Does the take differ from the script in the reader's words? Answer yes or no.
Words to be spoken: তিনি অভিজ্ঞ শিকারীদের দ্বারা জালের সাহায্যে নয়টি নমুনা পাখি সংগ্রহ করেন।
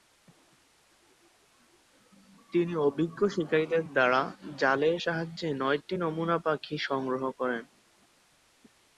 no